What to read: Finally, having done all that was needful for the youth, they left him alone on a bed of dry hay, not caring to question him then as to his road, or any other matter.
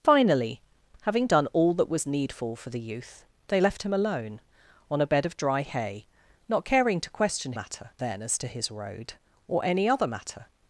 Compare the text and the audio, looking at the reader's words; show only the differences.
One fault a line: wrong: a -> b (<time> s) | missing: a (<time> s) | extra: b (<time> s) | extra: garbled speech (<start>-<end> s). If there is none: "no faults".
wrong: him -> matter (7.5 s)